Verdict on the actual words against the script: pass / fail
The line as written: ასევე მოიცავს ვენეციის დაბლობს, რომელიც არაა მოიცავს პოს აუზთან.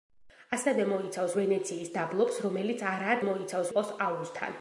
pass